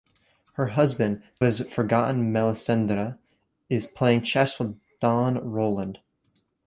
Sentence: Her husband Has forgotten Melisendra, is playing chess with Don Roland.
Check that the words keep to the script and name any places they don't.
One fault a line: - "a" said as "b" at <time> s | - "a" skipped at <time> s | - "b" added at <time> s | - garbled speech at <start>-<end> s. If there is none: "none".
none